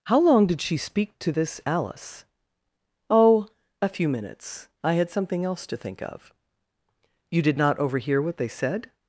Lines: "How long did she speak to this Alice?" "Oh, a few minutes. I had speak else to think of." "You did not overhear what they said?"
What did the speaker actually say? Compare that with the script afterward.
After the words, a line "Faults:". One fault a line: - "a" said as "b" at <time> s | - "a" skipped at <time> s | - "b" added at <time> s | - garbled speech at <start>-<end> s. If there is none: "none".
"How long did she speak to this Alice?" "Oh, a few minutes. I had something else to think of." "You did not overhear what they said?"
Faults:
- "speak" said as "something" at 5.1 s